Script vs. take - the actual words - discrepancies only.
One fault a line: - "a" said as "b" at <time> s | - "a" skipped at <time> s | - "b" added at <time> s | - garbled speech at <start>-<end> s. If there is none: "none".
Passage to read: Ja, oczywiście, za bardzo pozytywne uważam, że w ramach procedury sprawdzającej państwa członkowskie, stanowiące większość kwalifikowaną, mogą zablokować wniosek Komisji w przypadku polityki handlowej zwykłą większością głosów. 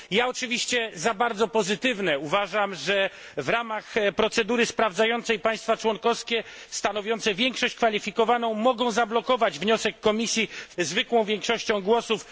- "przypadku polityki handlowej" skipped at 10.8 s